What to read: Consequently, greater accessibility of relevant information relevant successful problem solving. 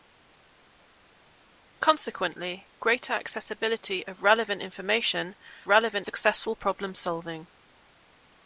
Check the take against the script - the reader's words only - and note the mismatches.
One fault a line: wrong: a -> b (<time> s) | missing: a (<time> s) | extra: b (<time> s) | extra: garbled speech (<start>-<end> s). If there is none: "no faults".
no faults